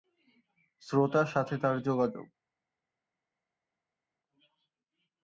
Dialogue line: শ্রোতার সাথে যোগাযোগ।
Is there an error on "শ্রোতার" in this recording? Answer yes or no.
no